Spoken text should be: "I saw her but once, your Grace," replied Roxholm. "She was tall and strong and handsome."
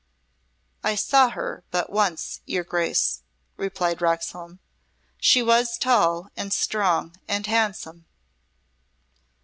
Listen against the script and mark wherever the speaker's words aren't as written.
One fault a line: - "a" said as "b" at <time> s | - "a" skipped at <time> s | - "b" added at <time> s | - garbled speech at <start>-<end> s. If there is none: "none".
none